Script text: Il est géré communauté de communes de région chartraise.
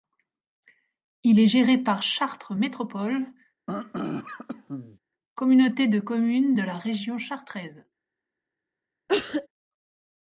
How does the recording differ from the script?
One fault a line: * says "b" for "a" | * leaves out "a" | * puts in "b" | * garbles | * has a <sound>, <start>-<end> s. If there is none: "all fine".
* puts in "par Chartres Métropole"
* has a throat clearing, 3.7-5.0 s
* puts in "la"
* has a cough, 9.1-9.5 s